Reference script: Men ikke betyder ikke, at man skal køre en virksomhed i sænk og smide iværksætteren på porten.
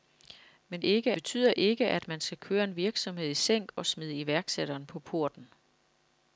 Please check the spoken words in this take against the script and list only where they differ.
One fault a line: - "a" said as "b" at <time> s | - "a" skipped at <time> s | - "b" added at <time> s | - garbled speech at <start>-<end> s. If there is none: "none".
none